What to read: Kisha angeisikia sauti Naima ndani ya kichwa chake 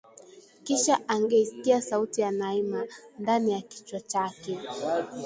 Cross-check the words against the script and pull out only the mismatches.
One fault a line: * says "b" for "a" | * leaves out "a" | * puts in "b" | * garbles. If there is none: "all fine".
* puts in "ya"